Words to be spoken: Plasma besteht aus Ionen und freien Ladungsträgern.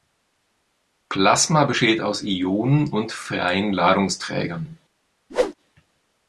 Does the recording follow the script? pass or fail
pass